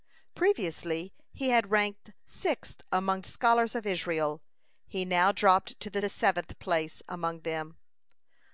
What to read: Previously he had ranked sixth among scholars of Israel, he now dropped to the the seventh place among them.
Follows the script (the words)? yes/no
yes